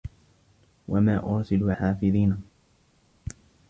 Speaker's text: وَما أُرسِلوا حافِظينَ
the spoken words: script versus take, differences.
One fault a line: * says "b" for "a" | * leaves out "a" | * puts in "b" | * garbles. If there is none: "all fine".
all fine